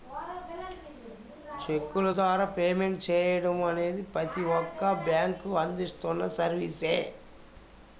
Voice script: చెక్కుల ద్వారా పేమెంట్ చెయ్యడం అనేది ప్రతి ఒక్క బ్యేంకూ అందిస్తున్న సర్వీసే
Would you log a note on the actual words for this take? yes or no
no